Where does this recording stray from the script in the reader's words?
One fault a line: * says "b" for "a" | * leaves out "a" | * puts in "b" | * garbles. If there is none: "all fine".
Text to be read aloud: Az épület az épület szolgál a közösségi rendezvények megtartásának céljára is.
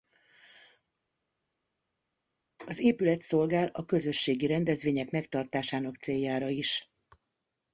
* leaves out "az épület"